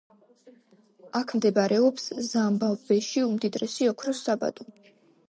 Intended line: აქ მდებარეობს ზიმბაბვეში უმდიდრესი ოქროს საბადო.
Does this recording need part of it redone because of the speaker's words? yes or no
no